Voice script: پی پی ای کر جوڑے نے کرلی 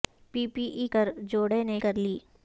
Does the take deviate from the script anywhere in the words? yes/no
no